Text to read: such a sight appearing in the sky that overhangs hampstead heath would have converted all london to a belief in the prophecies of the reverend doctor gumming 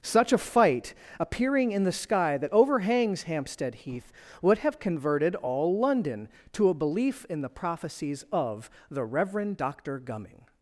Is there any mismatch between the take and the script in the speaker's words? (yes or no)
yes